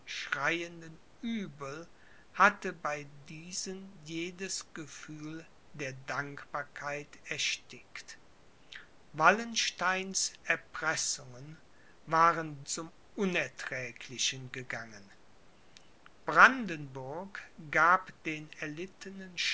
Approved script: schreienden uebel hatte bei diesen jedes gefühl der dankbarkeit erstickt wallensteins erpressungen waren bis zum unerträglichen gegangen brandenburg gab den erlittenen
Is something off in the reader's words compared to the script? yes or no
yes